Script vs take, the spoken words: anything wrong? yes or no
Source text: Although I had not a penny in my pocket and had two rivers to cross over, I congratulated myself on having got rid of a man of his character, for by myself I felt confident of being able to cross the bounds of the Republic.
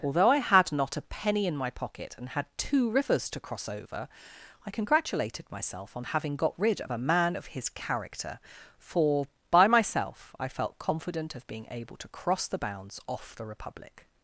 yes